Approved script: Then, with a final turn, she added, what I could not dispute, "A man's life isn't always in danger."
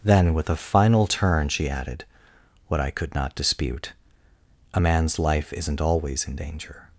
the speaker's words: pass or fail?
pass